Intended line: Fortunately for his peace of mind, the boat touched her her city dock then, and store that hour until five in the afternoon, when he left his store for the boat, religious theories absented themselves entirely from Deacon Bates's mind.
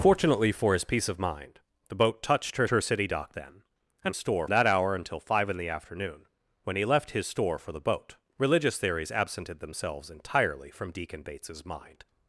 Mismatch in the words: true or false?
false